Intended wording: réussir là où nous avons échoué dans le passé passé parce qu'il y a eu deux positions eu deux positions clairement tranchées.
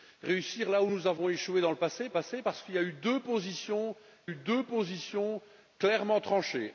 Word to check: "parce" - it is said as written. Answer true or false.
true